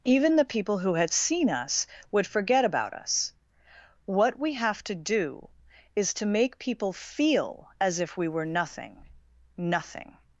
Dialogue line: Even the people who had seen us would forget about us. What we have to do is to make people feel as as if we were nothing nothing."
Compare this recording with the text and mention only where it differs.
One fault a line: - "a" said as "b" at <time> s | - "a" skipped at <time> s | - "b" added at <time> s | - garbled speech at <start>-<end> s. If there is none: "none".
- "as" skipped at 8.0 s